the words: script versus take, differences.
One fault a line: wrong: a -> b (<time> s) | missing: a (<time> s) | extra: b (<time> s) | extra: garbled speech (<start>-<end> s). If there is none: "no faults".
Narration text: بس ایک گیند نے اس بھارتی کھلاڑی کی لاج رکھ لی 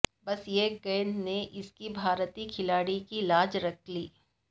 no faults